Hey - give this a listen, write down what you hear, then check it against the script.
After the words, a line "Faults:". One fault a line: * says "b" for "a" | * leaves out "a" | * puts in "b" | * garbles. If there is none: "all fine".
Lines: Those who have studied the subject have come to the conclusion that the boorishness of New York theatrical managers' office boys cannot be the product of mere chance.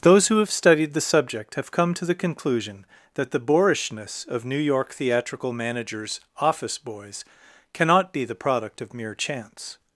Those who have studied the subject have come to the conclusion that the boorishness of New York theatrical managers' office boys cannot be the product of mere chance.
Faults:
all fine